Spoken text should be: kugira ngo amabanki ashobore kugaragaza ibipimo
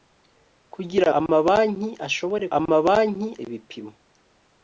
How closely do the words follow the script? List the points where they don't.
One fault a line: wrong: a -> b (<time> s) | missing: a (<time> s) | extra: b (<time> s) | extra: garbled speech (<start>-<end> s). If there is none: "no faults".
missing: ngo (1.1 s)
wrong: kugaragaza -> amabanki (2.6 s)